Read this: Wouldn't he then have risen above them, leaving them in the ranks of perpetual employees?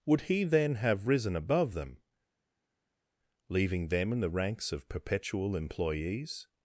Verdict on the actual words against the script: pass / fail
fail